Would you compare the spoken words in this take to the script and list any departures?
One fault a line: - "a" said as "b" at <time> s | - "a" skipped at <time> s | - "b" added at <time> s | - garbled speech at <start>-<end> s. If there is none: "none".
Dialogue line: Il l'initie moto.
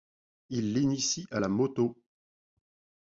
- "à la" added at 1.3 s